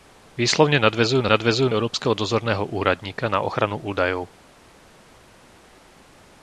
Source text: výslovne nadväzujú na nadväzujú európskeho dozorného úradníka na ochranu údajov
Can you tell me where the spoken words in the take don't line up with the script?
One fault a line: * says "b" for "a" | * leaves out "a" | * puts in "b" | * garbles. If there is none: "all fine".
all fine